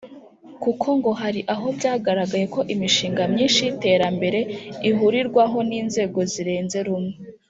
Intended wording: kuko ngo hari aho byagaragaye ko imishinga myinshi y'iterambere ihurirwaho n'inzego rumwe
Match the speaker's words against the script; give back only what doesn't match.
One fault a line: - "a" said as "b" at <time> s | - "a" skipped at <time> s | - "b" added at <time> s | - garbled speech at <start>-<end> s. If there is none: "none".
- "zirenze" added at 6.3 s